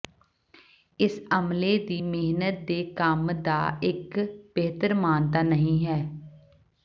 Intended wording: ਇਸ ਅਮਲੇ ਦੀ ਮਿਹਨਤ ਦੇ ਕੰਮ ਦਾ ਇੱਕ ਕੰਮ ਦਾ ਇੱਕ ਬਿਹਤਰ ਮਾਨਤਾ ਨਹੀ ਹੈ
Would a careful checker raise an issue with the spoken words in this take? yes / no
yes